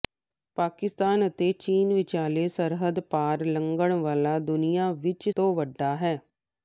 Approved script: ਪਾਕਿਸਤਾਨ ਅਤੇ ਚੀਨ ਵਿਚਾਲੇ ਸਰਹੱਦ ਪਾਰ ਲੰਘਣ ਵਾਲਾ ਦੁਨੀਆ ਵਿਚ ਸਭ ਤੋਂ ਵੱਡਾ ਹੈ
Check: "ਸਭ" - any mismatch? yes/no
yes